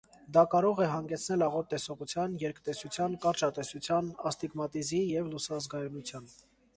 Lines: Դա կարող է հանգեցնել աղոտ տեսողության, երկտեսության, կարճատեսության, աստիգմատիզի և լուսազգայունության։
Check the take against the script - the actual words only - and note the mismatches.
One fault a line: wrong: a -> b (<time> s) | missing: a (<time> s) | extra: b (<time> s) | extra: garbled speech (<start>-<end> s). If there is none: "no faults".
no faults